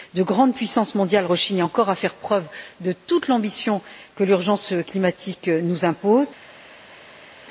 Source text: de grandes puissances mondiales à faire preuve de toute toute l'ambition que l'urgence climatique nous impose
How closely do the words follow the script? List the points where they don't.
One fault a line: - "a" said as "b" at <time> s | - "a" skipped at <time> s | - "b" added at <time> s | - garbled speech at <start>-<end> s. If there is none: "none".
- "rechignent encore" added at 1.2 s
- "toute" skipped at 3.3 s